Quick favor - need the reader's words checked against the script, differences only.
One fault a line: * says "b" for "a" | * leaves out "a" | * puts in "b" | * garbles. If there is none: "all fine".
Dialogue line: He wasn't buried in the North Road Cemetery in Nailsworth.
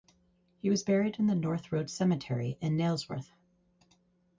* says "was" for "wasn't"